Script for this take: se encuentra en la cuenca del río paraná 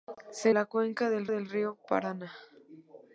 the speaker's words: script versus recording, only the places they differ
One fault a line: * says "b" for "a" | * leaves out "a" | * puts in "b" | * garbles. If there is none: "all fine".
* leaves out "encuentra en"
* puts in "del"